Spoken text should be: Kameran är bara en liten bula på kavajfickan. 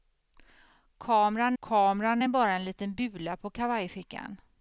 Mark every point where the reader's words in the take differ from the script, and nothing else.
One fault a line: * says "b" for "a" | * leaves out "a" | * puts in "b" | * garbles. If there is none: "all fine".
* puts in "kameran"